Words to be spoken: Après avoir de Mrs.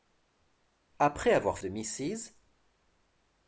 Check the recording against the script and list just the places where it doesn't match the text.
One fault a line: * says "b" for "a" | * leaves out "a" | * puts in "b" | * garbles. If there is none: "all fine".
all fine